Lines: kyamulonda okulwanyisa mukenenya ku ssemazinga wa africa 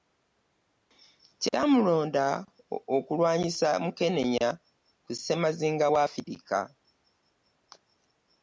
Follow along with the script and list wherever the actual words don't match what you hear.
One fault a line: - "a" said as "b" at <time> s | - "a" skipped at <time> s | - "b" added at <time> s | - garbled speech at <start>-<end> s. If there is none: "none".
none